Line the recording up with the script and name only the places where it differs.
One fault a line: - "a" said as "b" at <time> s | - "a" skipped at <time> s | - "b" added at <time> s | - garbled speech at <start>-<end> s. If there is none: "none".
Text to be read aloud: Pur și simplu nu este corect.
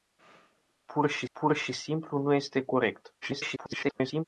- "pur și" added at 1.3 s
- garbled speech at 3.2-4.2 s